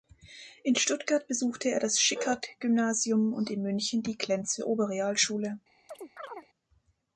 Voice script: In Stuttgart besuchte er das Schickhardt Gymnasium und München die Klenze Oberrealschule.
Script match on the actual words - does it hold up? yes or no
no